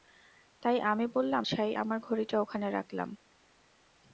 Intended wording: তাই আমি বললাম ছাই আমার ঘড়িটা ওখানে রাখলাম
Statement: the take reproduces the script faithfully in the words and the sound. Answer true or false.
true